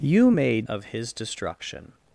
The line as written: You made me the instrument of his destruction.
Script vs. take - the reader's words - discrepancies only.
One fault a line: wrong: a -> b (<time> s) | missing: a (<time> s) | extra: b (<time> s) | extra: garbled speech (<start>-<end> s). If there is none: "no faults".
missing: me the instrument (0.7 s)